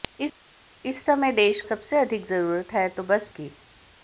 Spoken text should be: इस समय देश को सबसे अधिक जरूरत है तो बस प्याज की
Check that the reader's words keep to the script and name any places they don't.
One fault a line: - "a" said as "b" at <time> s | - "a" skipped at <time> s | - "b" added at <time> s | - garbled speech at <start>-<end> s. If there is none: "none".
- "को" skipped at 1.6 s
- "प्याज" skipped at 3.3 s